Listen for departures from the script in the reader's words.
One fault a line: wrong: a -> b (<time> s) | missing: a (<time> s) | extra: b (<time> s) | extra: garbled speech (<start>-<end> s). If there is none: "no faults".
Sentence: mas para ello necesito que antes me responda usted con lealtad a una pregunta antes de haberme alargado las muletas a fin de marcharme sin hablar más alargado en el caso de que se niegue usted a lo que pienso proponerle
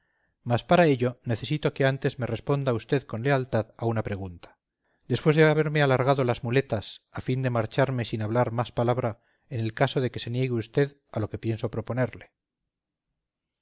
wrong: antes -> después (5.1 s)
wrong: alargado -> palabra (8.8 s)